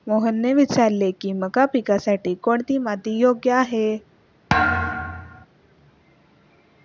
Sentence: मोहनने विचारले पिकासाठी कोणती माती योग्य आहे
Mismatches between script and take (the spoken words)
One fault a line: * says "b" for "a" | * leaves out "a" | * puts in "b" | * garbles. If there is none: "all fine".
* puts in "की मका"